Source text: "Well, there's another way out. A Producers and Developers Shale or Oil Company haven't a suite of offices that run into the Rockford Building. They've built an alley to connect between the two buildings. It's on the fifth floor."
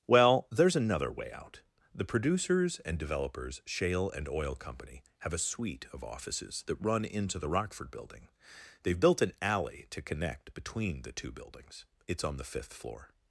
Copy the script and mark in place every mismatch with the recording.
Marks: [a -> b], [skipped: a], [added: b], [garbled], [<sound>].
"Well, there's another way out. [A -> The] Producers and Developers Shale [or -> and] Oil Company [haven't -> have] a suite of offices that run into the Rockford Building. They've built an alley to connect between the two buildings. It's on the fifth floor."